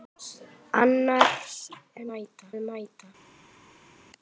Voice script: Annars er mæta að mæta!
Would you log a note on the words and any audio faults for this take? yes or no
no